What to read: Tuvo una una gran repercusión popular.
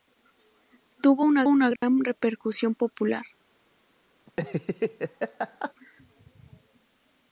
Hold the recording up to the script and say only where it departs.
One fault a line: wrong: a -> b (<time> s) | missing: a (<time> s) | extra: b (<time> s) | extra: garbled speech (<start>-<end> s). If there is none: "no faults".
no faults